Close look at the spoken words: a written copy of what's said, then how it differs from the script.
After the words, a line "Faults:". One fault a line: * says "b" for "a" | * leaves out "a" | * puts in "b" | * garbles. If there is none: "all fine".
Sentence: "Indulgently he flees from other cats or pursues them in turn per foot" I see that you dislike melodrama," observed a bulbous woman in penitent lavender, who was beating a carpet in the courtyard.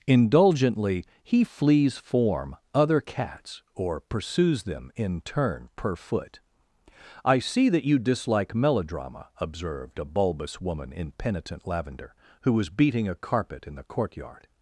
"Indulgently he flees form other cats or pursues them in turn per foot" I see that you dislike melodrama," observed a bulbous woman in penitent lavender, who was beating a carpet in the courtyard.
Faults:
* says "form" for "from"